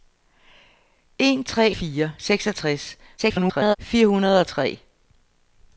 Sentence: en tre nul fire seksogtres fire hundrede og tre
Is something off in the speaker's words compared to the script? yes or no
yes